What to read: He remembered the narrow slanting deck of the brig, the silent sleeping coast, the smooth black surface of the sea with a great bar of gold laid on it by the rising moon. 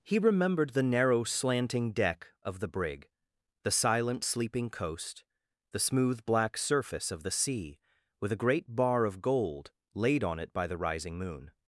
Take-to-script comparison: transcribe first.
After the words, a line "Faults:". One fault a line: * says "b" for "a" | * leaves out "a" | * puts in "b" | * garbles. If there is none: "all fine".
He remembered the narrow slanting deck of the brig, the silent sleeping coast, the smooth black surface of the sea with a great bar of gold laid on it by the rising moon.
Faults:
all fine